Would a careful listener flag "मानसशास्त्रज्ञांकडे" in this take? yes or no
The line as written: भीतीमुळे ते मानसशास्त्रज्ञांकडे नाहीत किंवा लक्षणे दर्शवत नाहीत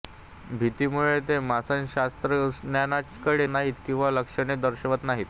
no